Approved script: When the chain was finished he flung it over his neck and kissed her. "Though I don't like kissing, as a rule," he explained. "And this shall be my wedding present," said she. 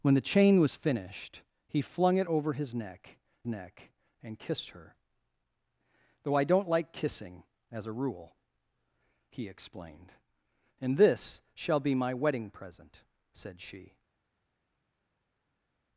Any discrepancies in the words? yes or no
yes